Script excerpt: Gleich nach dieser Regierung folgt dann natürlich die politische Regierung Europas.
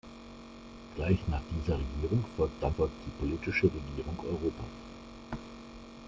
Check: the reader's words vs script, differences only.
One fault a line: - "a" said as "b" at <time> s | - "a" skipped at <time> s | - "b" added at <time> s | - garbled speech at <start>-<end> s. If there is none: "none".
- "natürlich" said as "folgt" at 2.8 s